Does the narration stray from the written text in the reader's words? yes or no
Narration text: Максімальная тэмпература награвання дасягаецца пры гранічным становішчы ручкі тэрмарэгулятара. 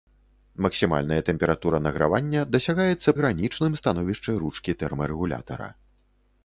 yes